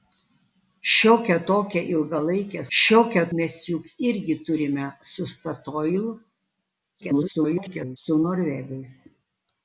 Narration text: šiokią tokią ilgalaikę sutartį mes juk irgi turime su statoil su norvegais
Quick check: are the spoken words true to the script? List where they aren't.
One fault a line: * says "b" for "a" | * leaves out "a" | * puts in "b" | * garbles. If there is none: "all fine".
* says "šiokią" for "sutartį"
* garbles